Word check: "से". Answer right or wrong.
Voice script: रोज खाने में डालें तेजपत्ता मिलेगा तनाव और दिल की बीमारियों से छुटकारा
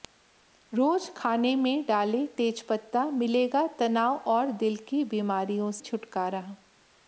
wrong